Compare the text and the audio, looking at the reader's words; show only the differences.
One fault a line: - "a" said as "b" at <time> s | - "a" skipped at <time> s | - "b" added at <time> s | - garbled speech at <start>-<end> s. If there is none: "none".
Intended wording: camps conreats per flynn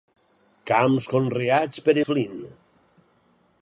none